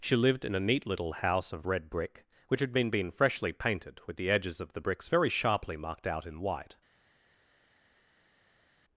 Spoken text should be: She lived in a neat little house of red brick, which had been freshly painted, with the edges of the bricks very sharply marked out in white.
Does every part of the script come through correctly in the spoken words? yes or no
no